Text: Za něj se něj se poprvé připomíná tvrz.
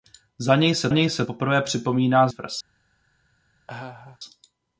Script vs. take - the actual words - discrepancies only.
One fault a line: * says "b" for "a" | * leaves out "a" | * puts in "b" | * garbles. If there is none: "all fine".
all fine